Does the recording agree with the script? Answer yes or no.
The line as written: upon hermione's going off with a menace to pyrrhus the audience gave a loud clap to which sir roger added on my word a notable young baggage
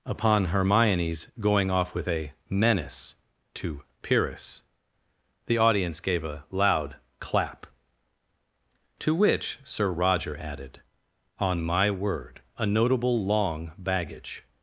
no